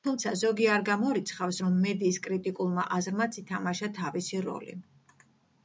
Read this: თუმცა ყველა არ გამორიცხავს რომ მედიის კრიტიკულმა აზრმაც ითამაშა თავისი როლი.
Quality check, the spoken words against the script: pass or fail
fail